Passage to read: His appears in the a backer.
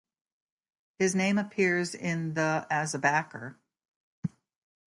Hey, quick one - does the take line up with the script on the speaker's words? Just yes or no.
no